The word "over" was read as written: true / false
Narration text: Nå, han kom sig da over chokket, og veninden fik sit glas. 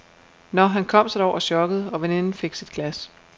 true